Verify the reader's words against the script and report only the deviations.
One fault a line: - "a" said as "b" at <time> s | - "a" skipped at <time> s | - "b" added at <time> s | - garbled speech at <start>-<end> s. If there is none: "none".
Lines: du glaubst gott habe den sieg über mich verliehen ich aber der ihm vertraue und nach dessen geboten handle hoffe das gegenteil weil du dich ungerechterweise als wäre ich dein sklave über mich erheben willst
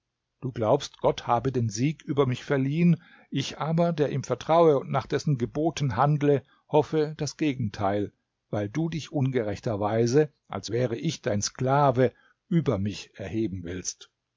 none